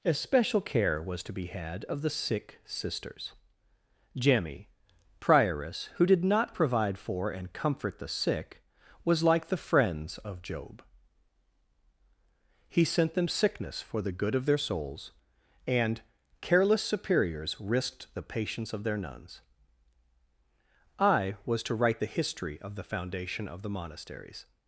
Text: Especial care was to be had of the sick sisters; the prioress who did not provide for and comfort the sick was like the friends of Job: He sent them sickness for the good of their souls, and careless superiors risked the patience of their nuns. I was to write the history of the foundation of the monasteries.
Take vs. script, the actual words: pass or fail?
fail